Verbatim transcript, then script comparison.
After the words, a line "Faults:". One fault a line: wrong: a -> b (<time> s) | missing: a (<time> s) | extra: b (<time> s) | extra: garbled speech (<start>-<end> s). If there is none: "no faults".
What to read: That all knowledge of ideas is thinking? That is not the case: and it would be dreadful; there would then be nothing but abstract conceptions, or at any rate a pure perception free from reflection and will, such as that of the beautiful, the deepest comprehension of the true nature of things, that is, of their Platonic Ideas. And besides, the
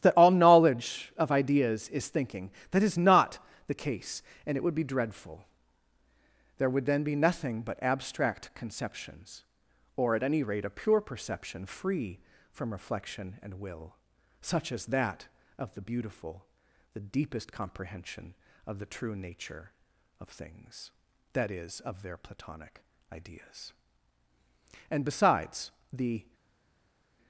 That all knowledge of ideas is thinking? That is not the case: and it would be dreadful; there would then be nothing but abstract conceptions, or at any rate a pure perception free from reflection and will, such as that of the beautiful, the deepest comprehension of the true nature of things, that is, of their Platonic Ideas. And besides, the
Faults:
no faults